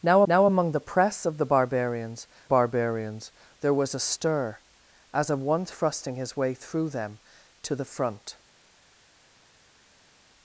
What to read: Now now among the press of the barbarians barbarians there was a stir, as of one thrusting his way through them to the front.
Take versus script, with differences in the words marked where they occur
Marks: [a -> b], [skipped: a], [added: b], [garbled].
Now now among the press of the barbarians barbarians there was a stir, as of one thrusting his way through them to the front.